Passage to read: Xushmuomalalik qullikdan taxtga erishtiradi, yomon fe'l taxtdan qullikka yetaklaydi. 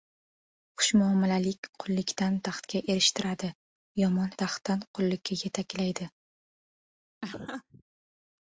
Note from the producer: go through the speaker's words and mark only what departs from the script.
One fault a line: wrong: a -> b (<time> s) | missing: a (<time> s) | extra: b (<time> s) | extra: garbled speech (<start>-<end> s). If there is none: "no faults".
missing: fe'l (4.3 s)